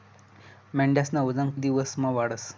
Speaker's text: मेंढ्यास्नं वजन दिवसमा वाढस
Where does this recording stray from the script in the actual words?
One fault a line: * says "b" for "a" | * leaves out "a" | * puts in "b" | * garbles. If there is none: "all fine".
all fine